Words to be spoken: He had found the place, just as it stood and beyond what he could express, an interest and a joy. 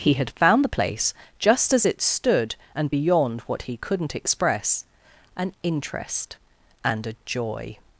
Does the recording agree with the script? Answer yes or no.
no